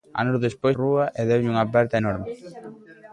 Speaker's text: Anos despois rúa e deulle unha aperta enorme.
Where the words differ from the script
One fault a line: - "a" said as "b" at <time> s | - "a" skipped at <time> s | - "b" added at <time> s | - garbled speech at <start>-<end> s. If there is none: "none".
none